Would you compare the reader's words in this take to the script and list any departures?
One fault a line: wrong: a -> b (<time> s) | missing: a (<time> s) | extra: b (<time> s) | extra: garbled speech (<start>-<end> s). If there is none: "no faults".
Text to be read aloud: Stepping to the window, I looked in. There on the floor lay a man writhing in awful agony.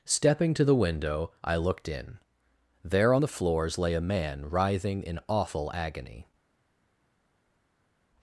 wrong: floor -> floors (3.3 s)